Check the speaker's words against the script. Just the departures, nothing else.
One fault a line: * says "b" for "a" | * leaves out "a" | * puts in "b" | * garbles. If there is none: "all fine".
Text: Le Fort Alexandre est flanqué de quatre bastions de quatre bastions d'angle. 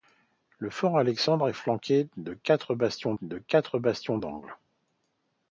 all fine